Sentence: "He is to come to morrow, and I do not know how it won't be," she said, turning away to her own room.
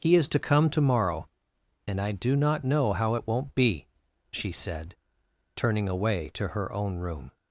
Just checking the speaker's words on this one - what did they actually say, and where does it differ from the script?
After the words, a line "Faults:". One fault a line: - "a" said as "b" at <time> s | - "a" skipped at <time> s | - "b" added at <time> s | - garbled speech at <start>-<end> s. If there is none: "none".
"He is to come to morrow, and I do not know how it won't be," she said, turning away to her own room.
Faults:
none